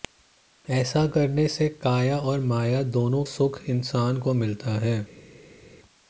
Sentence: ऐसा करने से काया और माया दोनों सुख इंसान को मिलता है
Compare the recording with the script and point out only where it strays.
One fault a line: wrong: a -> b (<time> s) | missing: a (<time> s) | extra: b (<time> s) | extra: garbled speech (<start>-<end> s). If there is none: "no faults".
no faults